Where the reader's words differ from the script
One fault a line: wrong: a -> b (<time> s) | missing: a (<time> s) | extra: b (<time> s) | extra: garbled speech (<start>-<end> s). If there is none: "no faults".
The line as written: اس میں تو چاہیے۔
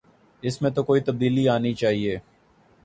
extra: کوئی تبدیلی آنی (0.8 s)